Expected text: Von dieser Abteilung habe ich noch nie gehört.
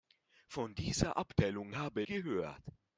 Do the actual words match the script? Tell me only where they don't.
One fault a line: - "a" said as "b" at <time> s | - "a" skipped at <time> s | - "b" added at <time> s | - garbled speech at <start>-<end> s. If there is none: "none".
- "ich noch nie" skipped at 2.0 s